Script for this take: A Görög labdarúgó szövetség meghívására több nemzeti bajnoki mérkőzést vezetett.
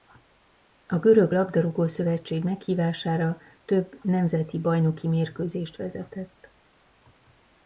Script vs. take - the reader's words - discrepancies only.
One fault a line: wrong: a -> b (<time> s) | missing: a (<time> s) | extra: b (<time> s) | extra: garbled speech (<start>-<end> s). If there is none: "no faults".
no faults